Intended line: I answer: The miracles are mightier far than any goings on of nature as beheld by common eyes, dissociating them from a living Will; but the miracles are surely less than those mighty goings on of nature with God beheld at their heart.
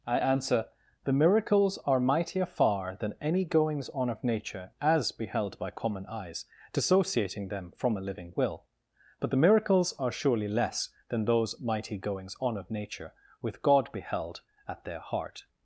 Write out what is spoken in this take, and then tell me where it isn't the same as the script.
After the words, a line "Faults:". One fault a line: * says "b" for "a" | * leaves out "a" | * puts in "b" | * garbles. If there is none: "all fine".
I answer: The miracles are mightier far than any goings on of nature as beheld by common eyes, dissociating them from a living Will; but the miracles are surely less than those mighty goings on of nature with God beheld at their heart.
Faults:
all fine